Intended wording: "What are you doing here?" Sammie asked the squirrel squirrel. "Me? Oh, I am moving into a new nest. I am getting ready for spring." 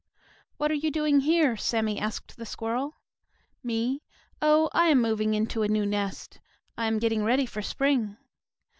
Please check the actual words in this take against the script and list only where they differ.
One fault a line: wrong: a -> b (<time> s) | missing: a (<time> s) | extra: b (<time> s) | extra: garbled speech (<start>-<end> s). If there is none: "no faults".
missing: squirrel (2.9 s)